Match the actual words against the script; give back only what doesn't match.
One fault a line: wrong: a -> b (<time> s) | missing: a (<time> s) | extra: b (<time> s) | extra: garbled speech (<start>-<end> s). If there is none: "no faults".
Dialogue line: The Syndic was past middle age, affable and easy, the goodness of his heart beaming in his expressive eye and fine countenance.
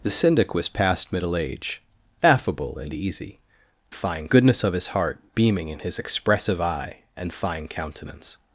wrong: the -> fine (3.9 s)